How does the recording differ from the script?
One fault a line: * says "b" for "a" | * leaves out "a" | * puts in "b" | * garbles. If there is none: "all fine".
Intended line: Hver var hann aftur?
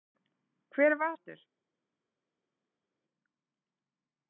* leaves out "hann"